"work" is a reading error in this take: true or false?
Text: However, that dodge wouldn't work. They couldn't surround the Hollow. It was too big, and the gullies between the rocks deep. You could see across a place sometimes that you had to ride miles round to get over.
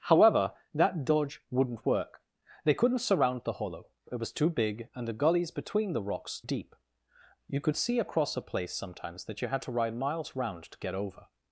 false